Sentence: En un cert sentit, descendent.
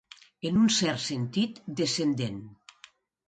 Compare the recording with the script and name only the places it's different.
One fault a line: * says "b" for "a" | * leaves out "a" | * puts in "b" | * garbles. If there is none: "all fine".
all fine